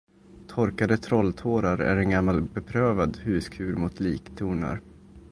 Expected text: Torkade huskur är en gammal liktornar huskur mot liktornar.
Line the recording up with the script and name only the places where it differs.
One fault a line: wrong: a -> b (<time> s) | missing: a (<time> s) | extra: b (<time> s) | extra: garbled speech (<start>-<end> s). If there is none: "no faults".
wrong: huskur -> trolltårar (1.0 s)
wrong: liktornar -> beprövad (2.4 s)